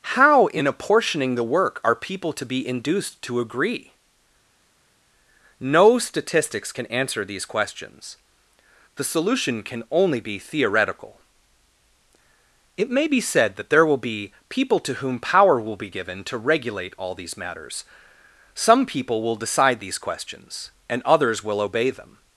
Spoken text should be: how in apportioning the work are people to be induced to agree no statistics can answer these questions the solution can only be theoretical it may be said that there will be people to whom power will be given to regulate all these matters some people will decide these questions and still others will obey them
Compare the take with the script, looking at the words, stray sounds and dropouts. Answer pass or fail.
fail